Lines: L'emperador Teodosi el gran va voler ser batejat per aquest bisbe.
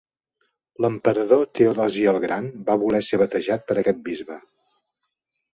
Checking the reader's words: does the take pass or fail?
pass